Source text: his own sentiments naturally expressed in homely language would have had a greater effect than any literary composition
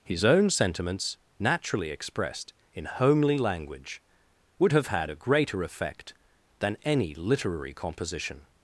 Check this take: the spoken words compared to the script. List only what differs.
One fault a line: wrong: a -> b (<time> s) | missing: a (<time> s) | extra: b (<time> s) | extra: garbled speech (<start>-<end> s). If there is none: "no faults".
no faults